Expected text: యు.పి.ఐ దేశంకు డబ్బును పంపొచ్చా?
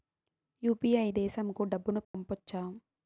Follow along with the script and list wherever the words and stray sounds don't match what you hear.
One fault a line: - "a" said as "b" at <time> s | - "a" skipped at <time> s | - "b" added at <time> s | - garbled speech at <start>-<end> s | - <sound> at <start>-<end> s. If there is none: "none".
- dropout at 2.0-2.1 s